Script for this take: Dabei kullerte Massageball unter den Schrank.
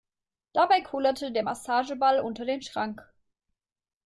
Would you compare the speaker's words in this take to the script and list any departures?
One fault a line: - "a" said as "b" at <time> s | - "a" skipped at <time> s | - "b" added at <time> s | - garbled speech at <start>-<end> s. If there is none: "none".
- "der" added at 1.3 s